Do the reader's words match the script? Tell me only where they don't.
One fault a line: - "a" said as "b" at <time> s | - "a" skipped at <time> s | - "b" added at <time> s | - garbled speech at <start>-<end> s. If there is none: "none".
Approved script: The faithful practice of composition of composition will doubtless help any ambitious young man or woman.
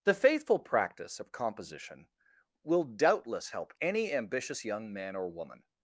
- "of composition" skipped at 2.1 s